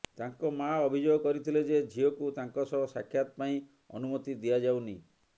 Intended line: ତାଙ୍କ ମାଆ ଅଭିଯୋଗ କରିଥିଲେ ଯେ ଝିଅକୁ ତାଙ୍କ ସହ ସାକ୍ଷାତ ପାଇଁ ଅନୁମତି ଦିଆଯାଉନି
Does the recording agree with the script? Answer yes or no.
yes